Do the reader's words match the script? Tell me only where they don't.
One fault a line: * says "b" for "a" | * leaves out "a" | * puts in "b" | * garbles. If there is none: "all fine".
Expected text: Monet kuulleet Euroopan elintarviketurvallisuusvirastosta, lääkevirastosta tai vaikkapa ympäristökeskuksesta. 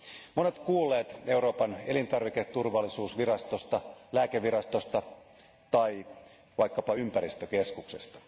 all fine